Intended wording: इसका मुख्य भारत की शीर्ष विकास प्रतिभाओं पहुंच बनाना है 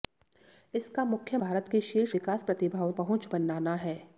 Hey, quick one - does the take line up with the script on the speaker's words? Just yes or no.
yes